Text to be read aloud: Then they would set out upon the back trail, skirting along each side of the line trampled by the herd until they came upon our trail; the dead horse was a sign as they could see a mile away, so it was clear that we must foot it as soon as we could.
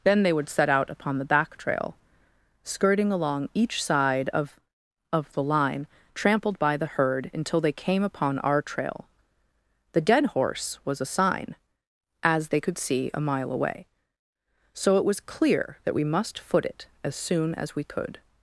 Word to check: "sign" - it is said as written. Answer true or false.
true